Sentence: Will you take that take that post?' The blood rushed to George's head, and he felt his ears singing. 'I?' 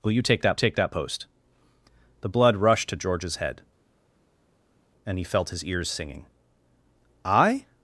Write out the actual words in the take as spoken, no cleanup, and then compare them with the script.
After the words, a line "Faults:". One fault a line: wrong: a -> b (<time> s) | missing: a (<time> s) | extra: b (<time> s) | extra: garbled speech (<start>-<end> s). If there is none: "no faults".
Will you take that take that post?' The blood rushed to George's head, and he felt his ears singing. 'I?'
Faults:
no faults